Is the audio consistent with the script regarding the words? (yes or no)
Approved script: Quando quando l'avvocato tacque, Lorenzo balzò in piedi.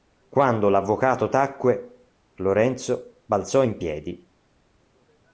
no